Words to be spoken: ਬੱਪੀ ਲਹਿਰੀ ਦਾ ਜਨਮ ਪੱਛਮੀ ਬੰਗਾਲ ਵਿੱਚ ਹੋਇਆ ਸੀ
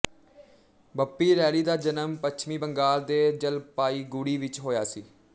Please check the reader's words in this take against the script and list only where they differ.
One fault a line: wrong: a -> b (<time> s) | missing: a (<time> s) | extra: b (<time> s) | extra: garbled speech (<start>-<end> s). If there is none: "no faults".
extra: ਦੇ ਜਲਪਾਈਗੁੜੀ (3.0 s)